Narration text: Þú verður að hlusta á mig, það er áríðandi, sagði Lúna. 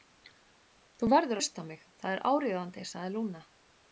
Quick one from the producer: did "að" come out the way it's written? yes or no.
no